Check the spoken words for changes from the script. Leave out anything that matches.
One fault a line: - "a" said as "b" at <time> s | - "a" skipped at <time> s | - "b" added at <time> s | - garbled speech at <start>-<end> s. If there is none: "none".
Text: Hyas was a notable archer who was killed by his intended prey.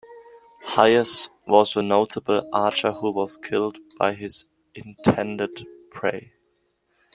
none